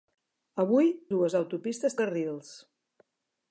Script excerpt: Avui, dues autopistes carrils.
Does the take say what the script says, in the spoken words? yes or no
yes